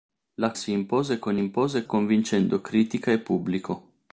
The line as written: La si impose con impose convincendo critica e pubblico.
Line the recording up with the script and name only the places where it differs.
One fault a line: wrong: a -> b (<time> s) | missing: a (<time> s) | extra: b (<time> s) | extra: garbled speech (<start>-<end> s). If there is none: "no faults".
no faults